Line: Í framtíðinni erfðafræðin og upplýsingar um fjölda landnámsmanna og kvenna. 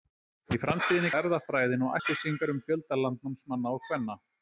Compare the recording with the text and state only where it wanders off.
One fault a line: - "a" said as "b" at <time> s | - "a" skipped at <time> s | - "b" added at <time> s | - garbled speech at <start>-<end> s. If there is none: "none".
none